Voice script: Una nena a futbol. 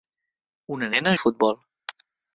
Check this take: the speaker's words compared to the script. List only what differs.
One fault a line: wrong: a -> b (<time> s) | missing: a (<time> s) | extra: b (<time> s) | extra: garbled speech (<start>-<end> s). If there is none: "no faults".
no faults